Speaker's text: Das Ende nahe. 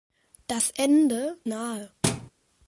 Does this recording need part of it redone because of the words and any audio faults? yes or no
yes